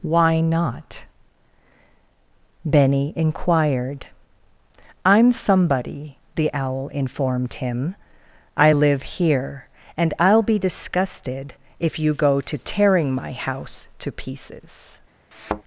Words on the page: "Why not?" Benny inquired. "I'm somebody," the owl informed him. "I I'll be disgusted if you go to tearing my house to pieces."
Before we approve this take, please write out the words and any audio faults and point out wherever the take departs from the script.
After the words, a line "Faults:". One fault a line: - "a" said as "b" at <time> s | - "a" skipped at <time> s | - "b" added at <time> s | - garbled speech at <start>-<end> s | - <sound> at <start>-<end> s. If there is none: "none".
"Why not?" Benny inquired. "I'm somebody," the owl informed him. "I live here; and I'll be disgusted if you go to tearing my house to pieces."
Faults:
- "live here and" added at 8.7 s
- thud at 15.3-15.6 s